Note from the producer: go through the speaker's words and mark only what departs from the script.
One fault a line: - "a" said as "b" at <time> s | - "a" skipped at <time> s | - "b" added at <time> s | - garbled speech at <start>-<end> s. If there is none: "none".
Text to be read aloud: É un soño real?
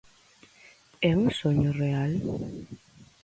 none